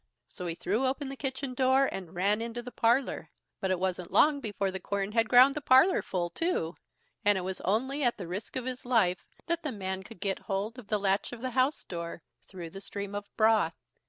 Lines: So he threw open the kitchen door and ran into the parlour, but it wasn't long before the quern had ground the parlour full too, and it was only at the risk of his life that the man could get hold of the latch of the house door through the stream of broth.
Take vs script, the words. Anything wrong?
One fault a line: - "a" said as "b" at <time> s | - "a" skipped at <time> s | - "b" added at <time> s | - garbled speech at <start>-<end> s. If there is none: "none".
none